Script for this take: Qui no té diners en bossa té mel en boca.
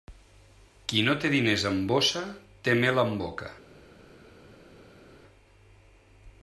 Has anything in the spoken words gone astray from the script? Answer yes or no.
no